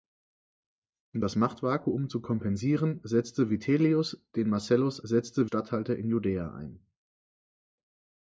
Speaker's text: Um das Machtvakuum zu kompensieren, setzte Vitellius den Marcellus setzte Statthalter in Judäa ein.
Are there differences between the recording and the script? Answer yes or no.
no